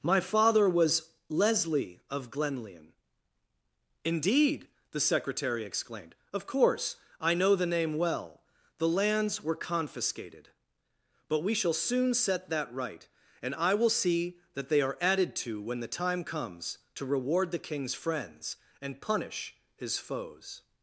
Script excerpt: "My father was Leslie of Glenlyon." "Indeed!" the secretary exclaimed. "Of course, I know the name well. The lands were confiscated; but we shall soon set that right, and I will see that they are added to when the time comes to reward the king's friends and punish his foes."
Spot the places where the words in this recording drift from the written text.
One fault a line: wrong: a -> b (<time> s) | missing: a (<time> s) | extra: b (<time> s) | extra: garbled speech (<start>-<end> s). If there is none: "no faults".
no faults